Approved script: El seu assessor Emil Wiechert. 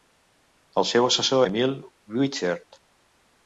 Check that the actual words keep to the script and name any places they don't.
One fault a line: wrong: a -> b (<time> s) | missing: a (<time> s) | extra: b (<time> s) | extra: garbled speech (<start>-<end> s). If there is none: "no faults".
no faults